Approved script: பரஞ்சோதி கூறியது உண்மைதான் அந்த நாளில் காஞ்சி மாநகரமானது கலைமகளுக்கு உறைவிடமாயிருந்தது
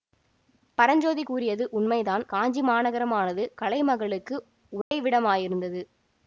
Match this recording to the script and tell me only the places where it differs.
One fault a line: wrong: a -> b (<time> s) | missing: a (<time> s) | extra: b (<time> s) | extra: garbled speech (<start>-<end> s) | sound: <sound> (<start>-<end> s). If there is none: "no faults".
missing: அந்த நாளில் (2.2 s)
sound: dropout (4.8-4.9 s)